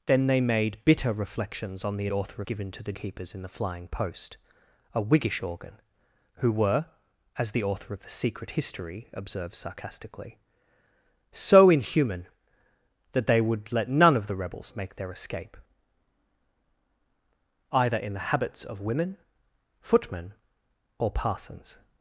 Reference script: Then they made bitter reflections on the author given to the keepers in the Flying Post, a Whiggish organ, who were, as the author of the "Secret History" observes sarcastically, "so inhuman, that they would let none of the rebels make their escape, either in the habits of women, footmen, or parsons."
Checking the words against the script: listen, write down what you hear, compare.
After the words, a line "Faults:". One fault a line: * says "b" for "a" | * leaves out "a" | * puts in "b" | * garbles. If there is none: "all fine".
Then they made bitter reflections on the author given to the keepers in the Flying Post, a Whiggish organ, who were, as the author of the "Secret History" observes sarcastically, "so inhuman, that they would let none of the rebels make their escape, either in the habits of women, footmen, or parsons."
Faults:
all fine